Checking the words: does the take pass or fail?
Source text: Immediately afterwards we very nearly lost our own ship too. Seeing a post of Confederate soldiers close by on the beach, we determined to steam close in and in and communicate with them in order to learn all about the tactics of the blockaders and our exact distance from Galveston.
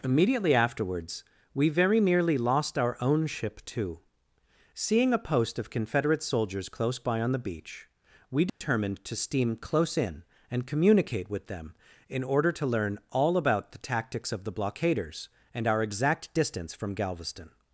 fail